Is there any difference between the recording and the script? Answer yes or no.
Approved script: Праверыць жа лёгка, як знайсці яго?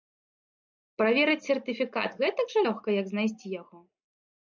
yes